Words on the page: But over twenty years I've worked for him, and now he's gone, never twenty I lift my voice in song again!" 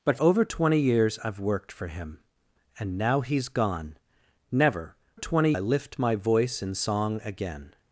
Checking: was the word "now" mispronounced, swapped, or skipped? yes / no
no